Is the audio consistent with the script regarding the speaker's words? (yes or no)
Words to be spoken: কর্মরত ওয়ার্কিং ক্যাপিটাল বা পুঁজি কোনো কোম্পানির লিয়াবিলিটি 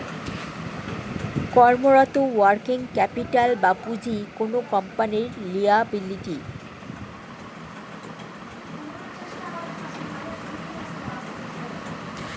yes